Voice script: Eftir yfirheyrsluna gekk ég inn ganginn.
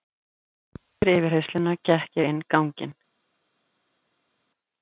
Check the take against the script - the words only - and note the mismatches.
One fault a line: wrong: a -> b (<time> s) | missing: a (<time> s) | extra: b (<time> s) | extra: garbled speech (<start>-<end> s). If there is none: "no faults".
no faults